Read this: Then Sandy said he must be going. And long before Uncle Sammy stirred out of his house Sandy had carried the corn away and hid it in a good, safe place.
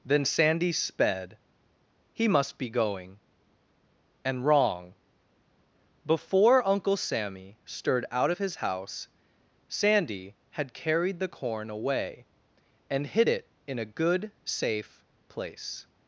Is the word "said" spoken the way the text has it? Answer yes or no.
no